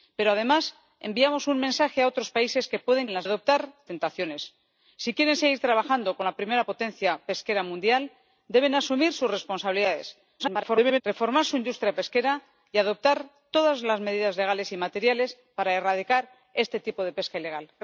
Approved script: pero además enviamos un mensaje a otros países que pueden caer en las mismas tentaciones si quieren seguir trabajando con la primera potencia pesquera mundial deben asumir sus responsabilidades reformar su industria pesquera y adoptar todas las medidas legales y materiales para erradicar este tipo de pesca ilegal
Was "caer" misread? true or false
true